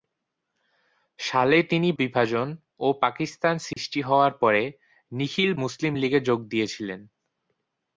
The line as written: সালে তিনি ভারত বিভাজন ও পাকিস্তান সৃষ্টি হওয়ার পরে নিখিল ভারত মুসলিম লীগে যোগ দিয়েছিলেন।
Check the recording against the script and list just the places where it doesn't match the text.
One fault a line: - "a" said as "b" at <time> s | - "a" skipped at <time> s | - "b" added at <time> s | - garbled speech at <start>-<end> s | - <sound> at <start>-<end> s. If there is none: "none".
- "ভারত" skipped at 1.9 s
- dropout at 3.7-3.8 s
- "ভারত" skipped at 5.5 s